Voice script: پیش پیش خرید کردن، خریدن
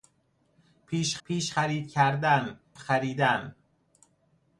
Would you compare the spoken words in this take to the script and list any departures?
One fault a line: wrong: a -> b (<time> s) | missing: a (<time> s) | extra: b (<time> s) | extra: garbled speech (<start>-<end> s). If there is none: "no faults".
no faults